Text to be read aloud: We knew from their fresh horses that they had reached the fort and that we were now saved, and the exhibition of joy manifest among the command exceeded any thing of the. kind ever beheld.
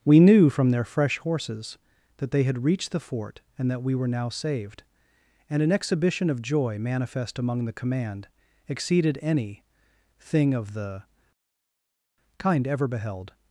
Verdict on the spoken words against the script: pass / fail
fail